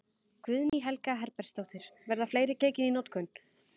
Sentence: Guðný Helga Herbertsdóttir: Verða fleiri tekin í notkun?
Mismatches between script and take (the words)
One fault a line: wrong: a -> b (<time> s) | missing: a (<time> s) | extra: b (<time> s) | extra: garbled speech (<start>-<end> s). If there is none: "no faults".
no faults